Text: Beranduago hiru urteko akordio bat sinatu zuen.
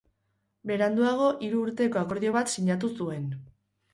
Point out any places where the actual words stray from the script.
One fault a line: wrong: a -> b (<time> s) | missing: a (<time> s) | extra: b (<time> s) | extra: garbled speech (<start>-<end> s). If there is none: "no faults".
no faults